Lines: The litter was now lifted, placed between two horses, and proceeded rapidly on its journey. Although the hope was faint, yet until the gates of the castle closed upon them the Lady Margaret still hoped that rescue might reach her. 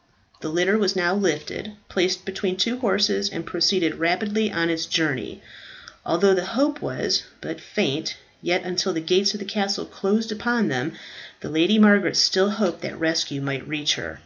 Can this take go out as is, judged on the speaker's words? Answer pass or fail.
fail